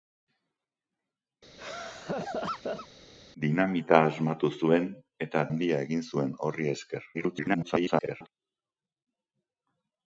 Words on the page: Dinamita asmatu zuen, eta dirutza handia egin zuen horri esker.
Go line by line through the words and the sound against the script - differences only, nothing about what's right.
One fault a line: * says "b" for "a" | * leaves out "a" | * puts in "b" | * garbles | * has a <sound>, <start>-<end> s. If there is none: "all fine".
* has a laugh, 1.6-2.9 s
* leaves out "dirutza"
* garbles